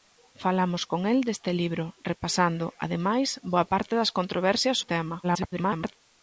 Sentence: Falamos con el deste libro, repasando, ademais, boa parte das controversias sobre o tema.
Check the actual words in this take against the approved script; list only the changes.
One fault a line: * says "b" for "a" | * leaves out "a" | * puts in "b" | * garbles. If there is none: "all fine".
* leaves out "sobre"
* garbles